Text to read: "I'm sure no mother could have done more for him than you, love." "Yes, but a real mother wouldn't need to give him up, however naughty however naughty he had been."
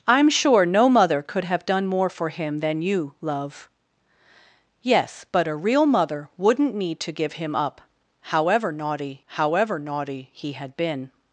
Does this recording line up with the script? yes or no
yes